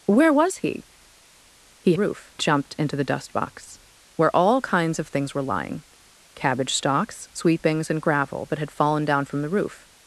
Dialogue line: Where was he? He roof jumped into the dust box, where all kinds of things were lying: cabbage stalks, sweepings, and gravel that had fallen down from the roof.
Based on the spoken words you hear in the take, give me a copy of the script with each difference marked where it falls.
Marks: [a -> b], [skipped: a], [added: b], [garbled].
Where was he? He roof jumped into the dust box, where all kinds of things were lying: cabbage stalks, sweepings, and gravel that had fallen down from the roof.